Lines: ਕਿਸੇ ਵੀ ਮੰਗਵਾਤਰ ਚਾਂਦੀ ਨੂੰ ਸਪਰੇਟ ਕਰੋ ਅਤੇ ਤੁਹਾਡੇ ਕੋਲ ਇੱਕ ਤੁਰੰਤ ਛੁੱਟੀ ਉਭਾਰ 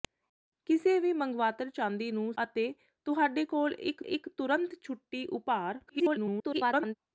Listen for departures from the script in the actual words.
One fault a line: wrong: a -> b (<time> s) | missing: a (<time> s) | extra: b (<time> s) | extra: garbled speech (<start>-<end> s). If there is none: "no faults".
missing: ਸਪਰੇਟ ਕਰੋ (2.3 s)
extra: ਇੱਕ (4.0 s)
extra: garbled speech (5.9-6.9 s)